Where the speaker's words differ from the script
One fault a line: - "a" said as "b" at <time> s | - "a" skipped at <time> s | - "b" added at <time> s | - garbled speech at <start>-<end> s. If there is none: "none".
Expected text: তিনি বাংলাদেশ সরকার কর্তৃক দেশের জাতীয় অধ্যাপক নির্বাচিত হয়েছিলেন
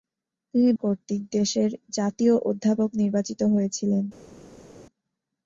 - "বাংলাদেশ সরকার" skipped at 0.7 s